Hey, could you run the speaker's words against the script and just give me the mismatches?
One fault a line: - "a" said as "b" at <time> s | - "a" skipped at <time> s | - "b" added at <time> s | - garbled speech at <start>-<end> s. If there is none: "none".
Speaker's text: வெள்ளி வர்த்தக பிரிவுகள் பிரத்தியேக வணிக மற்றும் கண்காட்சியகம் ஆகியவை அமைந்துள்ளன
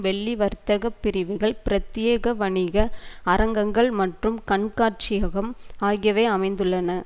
- "அரங்கங்கள்" added at 3.3 s